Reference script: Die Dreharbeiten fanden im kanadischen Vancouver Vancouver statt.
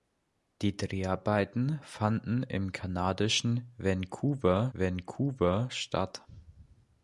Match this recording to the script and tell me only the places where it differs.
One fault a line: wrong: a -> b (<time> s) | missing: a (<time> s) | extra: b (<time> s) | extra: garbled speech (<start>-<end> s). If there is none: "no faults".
no faults